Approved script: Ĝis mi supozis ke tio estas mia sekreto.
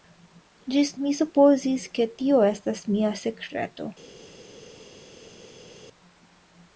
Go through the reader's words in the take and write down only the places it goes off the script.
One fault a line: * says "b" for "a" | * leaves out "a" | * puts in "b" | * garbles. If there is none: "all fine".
all fine